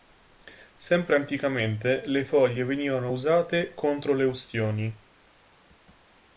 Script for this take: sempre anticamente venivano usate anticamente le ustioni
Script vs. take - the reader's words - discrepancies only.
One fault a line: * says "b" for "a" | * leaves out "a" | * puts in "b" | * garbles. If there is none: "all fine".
* puts in "le foglie"
* says "contro" for "anticamente"